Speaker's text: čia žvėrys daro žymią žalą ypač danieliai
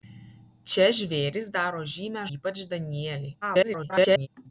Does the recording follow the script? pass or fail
fail